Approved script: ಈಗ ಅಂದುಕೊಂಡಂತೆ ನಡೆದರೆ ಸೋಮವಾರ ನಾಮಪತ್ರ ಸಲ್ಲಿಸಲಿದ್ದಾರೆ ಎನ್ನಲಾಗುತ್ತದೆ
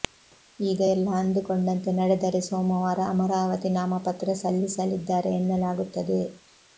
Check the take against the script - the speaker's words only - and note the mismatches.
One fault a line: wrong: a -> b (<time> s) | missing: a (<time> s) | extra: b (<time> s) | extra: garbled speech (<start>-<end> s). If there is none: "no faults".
extra: ಎಲ್ಲ (0.9 s)
extra: ಅಮರಾವತಿ (3.1 s)